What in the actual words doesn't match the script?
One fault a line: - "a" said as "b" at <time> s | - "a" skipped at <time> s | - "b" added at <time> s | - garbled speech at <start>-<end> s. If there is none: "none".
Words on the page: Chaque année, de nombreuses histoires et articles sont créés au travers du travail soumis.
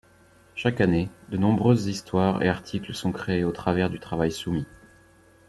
none